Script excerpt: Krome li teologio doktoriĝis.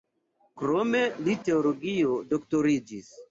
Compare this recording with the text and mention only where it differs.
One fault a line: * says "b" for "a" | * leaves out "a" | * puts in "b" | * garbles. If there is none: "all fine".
all fine